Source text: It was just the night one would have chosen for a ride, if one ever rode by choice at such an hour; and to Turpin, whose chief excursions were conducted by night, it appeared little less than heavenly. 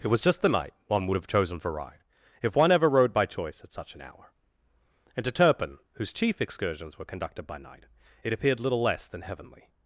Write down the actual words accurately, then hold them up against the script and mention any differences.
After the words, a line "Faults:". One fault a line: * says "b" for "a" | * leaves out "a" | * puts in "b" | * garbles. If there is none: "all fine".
It was just the night one would have chosen for ride, if one ever rode by choice at such an hour; and to Turpin, whose chief excursions were conducted by night, it appeared little less than heavenly.
Faults:
* leaves out "a"